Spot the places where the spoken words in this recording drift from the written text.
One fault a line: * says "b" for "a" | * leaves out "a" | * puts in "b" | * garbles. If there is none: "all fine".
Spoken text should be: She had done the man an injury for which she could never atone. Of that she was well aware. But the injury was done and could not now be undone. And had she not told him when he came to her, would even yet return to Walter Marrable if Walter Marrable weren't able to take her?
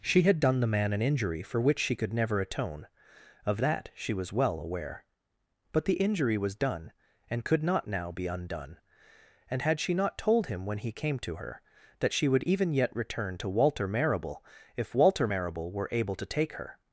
* puts in "that she"
* says "were" for "weren't"